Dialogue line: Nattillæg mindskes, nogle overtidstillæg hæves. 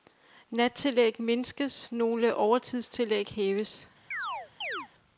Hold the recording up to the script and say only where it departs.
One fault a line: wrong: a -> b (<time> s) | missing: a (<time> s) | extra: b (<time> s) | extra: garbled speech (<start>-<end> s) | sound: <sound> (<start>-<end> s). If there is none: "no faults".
sound: chirp (4.1-4.9 s)